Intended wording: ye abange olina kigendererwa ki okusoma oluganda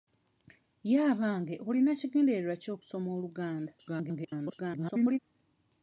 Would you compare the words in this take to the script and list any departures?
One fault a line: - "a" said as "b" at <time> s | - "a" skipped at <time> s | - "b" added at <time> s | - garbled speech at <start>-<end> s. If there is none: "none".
- garbled speech at 3.8-5.2 s